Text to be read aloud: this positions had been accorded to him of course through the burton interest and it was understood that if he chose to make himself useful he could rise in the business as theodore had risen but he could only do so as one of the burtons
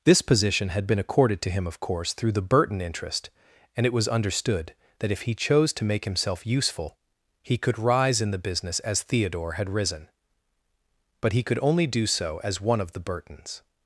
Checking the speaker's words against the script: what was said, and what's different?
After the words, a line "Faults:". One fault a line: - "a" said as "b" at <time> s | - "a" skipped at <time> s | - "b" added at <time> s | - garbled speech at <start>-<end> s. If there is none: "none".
this position had been accorded to him of course through the burton interest and it was understood that if he chose to make himself useful he could rise in the business as theodore had risen but he could only do so as one of the burtons
Faults:
- "positions" said as "position" at 0.2 s